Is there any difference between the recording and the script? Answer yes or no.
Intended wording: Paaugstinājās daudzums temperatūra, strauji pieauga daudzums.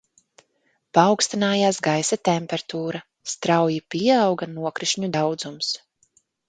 yes